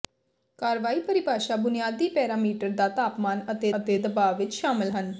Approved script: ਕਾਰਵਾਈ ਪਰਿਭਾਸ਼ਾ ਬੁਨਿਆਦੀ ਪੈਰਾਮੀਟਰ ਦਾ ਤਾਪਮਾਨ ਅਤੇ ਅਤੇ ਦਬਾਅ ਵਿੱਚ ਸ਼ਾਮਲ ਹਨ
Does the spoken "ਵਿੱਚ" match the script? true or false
true